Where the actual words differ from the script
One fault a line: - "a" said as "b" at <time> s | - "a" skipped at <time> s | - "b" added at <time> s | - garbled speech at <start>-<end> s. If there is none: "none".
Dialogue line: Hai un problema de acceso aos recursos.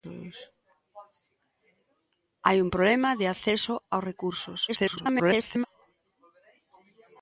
- garbled speech at 4.7-5.7 s